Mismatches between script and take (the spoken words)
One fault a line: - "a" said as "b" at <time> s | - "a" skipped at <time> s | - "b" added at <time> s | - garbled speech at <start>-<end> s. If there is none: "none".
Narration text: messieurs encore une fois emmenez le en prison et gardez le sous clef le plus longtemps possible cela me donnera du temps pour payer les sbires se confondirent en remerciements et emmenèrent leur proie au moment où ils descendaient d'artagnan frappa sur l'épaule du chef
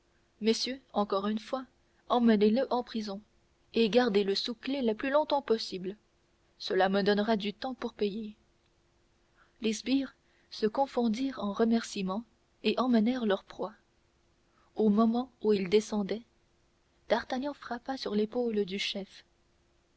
none